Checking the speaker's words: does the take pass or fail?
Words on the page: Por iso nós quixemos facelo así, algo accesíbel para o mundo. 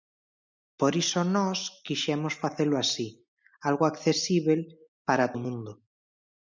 pass